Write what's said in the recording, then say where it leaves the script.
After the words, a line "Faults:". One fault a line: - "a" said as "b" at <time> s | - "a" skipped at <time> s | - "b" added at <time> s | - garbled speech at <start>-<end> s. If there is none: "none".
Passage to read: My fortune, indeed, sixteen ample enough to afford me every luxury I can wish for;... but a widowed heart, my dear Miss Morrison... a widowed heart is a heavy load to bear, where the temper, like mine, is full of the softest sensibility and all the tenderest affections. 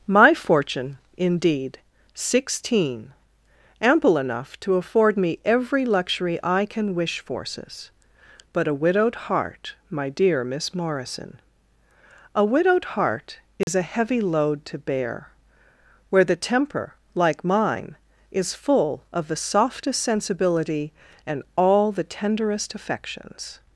My fortune, indeed, sixteen ample enough to afford me every luxury I can wish forces;... but a widowed heart, my dear Miss Morrison... a widowed heart is a heavy load to bear, where the temper, like mine, is full of the softest sensibility and all the tenderest affections.
Faults:
- "for" said as "forces" at 7.2 s